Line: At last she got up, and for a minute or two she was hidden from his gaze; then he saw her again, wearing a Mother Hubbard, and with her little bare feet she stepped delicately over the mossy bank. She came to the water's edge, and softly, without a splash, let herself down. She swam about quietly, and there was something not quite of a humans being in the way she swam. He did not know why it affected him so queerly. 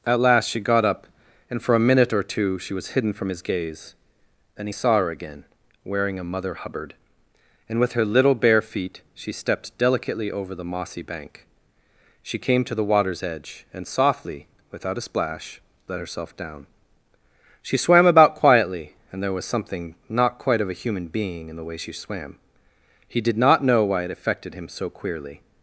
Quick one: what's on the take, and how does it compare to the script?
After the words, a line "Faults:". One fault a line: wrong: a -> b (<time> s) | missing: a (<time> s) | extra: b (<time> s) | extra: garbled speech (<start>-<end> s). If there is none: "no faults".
At last she got up, and for a minute or two she was hidden from his gaze; then he saw her again, wearing a Mother Hubbard, and with her little bare feet she stepped delicately over the mossy bank. She came to the water's edge, and softly, without a splash, let herself down. She swam about quietly, and there was something not quite of a human being in the way she swam. He did not know why it affected him so queerly.
Faults:
wrong: humans -> human (20.8 s)